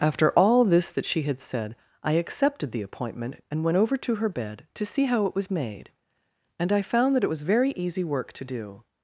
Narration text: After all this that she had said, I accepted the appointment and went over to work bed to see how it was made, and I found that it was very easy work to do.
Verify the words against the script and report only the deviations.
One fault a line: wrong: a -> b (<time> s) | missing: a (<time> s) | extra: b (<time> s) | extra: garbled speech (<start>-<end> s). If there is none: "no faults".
wrong: work -> her (4.2 s)